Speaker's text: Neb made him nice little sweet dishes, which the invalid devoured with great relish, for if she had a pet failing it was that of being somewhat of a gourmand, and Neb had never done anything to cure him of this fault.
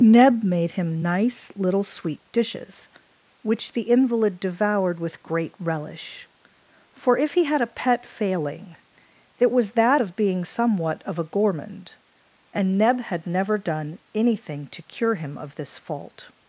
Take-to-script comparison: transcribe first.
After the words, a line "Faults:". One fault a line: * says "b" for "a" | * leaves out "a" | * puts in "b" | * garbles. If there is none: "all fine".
Neb made him nice little sweet dishes, which the invalid devoured with great relish, for if he had a pet failing it was that of being somewhat of a gourmand, and Neb had never done anything to cure him of this fault.
Faults:
* says "he" for "she"